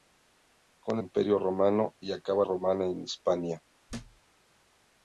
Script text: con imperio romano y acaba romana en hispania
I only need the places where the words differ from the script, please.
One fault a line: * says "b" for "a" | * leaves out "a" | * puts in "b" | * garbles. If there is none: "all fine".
all fine